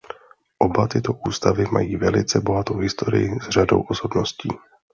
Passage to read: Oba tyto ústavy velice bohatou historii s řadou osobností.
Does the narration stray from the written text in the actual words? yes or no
yes